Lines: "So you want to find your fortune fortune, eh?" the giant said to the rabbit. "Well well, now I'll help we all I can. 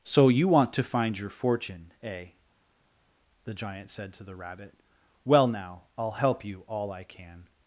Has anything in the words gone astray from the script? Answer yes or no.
yes